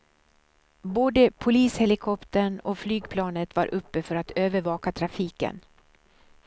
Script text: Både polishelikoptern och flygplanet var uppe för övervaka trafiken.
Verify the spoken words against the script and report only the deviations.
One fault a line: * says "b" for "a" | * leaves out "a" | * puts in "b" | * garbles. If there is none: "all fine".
* puts in "att"